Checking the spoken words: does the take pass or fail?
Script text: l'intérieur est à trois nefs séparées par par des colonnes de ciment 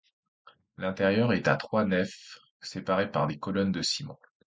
fail